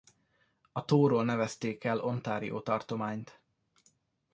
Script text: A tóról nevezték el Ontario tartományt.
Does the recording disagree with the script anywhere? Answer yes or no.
no